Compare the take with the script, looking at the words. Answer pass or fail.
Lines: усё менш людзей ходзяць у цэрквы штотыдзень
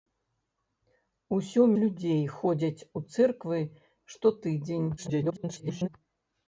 fail